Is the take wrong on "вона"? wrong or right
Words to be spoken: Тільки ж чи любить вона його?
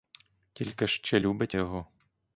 wrong